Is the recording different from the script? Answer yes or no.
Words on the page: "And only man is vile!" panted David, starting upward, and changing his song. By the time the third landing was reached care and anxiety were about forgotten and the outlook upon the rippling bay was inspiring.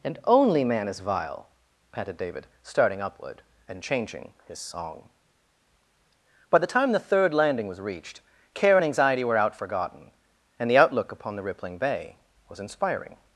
yes